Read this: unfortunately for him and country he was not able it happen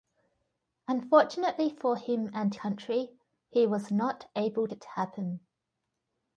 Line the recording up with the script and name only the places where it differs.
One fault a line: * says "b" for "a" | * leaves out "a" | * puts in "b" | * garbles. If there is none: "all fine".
all fine